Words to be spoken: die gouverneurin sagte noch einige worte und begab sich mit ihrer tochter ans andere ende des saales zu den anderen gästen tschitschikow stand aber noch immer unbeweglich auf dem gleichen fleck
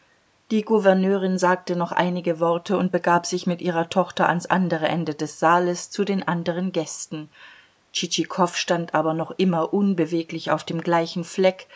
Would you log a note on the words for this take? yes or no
no